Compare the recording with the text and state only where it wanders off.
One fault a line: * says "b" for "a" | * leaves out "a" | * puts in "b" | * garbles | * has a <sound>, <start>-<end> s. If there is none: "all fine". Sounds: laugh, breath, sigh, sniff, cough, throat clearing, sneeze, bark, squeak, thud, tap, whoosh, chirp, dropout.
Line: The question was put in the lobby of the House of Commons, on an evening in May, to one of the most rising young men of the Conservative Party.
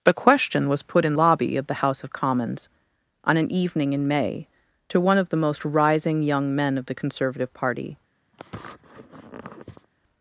* leaves out "the"
* has a sniff, 8.3-9.9 s